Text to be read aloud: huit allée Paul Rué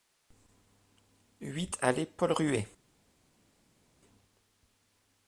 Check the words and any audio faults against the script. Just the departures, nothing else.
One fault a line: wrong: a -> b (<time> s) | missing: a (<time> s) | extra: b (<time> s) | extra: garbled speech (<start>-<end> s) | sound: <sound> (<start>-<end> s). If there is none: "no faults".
no faults